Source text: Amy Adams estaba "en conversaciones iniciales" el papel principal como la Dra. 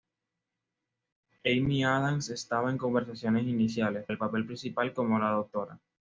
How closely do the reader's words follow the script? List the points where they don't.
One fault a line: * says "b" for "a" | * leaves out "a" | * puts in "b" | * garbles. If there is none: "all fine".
all fine